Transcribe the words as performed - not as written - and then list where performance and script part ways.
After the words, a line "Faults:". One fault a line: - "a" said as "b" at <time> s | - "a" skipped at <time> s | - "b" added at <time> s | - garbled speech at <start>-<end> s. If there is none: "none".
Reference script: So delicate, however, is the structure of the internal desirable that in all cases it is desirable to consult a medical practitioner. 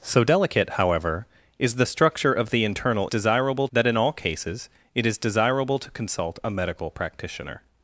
So delicate, however, is the structure of the internal desirable that in all cases it is desirable to consult a medical practitioner.
Faults:
none